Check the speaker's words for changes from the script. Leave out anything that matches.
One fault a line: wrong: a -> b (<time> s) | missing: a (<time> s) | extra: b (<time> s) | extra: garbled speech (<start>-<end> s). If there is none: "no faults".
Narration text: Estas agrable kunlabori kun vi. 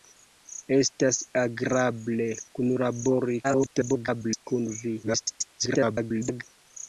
extra: garbled speech (3.4-4.4 s)
extra: garbled speech (5.0-6.4 s)